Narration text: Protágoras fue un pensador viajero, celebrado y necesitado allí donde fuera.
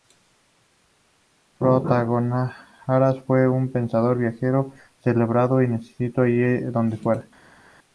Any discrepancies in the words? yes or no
no